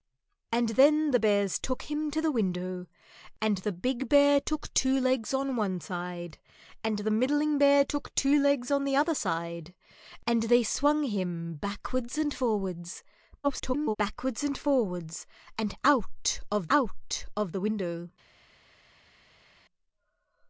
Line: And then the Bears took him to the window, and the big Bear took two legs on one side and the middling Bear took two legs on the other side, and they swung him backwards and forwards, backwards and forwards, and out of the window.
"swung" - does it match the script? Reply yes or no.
yes